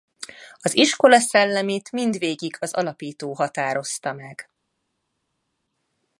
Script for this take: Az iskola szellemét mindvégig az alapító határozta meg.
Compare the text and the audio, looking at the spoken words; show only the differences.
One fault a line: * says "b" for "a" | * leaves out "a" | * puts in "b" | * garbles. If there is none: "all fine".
all fine